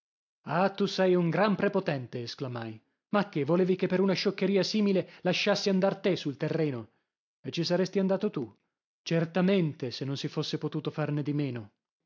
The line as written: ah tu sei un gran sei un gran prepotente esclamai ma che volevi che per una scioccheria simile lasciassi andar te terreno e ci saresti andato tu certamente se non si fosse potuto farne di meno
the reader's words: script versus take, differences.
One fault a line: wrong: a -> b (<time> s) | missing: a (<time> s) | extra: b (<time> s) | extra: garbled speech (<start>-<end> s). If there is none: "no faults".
missing: sei un gran (1.6 s)
extra: sul (6.2 s)